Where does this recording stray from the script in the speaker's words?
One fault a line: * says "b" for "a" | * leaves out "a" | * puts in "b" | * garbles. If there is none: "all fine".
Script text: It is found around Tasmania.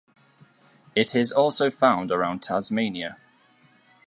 * puts in "also"